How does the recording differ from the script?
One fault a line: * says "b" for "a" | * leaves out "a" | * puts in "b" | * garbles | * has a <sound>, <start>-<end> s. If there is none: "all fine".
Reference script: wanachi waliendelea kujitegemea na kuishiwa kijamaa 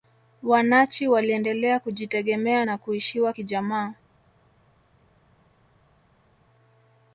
all fine